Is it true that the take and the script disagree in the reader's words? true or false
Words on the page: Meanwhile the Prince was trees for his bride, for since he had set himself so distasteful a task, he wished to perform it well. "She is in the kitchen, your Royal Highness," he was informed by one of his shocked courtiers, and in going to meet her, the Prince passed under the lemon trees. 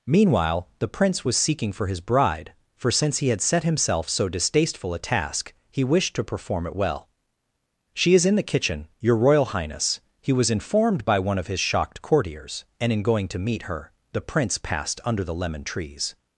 true